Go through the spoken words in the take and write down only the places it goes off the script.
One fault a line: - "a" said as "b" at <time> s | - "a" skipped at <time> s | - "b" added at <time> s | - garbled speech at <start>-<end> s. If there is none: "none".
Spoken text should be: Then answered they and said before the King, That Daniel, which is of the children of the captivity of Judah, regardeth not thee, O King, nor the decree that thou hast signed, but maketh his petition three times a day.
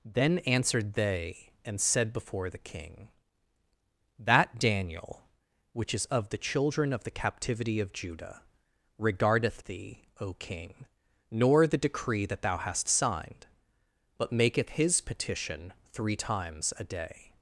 - "not" skipped at 9.6 s